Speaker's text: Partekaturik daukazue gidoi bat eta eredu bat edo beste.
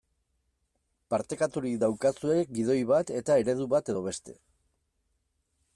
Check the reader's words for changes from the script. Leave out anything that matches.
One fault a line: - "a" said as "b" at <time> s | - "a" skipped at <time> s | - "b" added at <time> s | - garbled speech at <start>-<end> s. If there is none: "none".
none